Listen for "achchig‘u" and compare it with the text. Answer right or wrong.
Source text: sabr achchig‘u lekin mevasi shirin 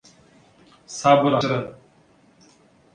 wrong